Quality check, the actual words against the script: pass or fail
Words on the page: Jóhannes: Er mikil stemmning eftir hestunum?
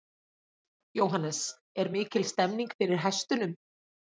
fail